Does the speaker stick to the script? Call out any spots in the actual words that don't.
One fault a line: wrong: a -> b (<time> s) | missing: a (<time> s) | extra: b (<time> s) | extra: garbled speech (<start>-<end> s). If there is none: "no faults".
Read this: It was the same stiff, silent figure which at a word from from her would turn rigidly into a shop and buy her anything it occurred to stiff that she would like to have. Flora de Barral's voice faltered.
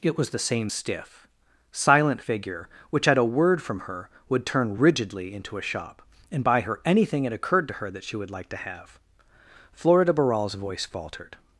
missing: from (3.8 s)
wrong: stiff -> her (7.8 s)